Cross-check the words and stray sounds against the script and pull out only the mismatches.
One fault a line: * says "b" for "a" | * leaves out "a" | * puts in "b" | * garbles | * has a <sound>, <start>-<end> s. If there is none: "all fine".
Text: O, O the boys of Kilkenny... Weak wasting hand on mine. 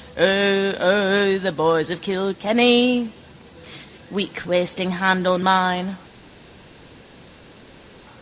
all fine